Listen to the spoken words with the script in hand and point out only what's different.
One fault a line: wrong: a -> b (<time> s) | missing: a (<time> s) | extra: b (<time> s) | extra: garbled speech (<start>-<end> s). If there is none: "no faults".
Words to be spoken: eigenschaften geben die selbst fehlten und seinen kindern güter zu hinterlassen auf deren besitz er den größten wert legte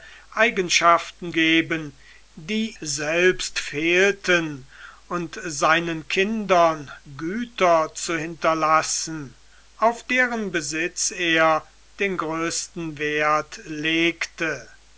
no faults